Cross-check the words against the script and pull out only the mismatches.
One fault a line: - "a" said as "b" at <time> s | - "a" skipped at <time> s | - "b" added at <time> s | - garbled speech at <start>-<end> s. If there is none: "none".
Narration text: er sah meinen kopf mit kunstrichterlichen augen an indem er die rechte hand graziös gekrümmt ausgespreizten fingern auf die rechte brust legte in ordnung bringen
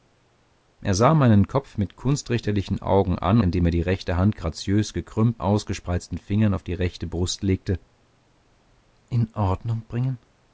none